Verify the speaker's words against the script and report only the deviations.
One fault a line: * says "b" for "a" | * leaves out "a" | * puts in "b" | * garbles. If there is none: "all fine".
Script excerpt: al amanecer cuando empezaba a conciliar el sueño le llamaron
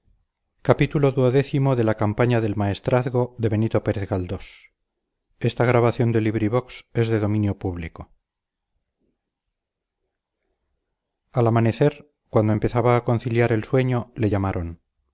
all fine